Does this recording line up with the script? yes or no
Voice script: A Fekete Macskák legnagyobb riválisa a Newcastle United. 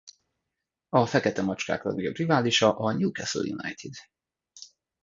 yes